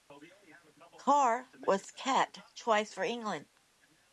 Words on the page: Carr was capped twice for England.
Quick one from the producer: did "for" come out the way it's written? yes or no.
yes